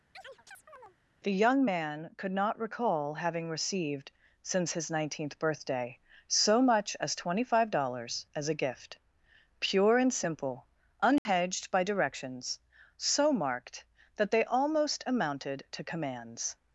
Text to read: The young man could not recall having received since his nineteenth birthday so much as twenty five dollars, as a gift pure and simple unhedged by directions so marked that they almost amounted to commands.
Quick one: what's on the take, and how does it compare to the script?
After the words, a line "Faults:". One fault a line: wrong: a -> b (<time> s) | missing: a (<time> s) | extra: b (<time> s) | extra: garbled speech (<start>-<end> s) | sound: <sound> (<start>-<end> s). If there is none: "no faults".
The young man could not recall having received since his nineteenth birthday so much as twenty five dollars, as a gift pure and simple unhedged by directions so marked that they almost amounted to commands.
Faults:
sound: chirp (0.1-1.0 s)
sound: dropout (11.2-11.3 s)